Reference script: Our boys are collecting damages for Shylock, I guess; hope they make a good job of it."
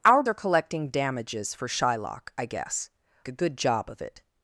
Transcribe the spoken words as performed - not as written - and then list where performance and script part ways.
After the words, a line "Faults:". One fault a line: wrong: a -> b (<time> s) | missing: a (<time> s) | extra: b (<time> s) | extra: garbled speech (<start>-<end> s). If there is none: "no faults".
Our are collecting damages for Shylock, I guess; a good job of it."
Faults:
missing: boys (0.2 s)
missing: hope they make (2.9 s)